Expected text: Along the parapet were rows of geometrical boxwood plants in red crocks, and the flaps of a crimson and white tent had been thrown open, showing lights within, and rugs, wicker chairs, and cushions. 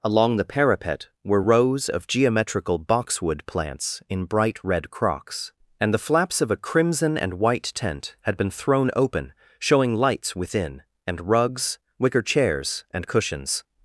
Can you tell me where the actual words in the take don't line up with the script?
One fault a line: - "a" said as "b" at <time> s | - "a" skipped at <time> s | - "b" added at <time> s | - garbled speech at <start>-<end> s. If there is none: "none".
- "bright" added at 4.2 s